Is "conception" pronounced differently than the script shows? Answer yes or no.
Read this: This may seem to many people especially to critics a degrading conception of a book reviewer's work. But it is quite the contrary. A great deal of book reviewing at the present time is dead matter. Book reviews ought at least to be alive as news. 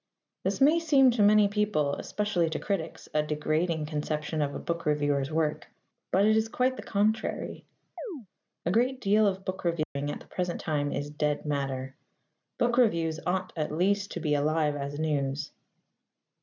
no